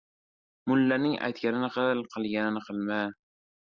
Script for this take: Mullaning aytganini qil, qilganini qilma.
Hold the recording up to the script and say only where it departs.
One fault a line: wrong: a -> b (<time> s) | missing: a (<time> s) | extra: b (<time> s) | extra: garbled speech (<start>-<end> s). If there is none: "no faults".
no faults